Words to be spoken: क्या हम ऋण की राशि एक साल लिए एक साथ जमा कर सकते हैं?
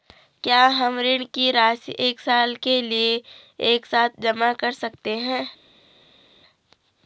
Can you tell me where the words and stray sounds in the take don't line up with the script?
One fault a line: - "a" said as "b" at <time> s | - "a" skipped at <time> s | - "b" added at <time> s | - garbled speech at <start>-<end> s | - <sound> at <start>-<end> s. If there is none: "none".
- "के" added at 2.5 s